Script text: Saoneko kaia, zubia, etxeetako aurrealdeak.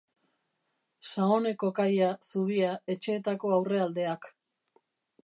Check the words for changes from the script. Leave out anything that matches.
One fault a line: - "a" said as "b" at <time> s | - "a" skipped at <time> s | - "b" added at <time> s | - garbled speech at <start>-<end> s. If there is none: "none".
none